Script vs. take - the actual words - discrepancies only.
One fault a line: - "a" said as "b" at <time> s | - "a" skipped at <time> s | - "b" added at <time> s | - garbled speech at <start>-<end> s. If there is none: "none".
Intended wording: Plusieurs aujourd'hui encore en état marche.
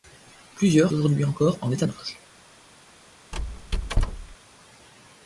none